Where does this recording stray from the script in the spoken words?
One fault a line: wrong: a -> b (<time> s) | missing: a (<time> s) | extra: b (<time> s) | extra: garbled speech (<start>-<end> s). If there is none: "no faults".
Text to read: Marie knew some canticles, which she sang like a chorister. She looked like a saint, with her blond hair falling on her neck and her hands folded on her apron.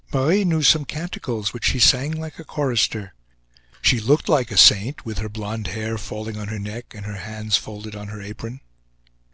no faults